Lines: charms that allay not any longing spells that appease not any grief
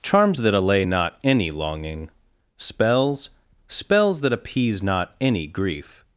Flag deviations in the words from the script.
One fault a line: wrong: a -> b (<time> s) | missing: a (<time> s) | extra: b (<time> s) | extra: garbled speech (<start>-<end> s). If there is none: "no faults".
extra: spells (3.7 s)